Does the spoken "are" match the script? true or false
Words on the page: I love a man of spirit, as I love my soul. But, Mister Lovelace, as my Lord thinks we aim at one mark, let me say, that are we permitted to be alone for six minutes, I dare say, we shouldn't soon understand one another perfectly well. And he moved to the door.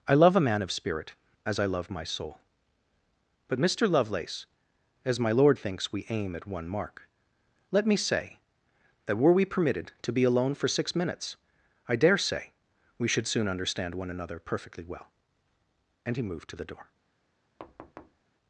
false